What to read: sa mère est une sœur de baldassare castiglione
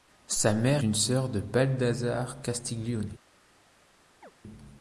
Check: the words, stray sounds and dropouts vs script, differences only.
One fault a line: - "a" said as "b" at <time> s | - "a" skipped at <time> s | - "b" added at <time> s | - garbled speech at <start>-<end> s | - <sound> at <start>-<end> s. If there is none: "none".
- "est" skipped at 0.8 s
- chirp at 4.2-4.3 s